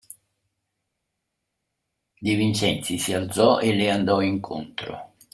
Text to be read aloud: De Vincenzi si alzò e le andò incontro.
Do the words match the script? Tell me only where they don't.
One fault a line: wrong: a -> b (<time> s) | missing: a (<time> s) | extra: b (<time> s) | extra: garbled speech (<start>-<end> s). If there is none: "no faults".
no faults